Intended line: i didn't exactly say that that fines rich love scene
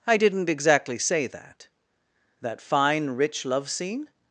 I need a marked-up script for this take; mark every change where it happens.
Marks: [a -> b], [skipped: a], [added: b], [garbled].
i didn't exactly say that that [fines -> fine] rich love scene